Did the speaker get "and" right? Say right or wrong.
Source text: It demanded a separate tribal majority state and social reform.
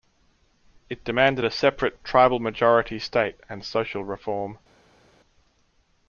right